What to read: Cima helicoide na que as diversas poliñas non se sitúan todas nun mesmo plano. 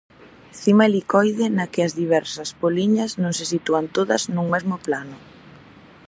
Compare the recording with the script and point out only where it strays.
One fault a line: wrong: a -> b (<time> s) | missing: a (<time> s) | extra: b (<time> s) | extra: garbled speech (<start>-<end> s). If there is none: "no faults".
no faults